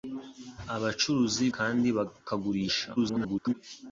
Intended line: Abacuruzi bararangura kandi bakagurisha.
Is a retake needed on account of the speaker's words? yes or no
yes